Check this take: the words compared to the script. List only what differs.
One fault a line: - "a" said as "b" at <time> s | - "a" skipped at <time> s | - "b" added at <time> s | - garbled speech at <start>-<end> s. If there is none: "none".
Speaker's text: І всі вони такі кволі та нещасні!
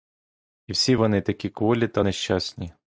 none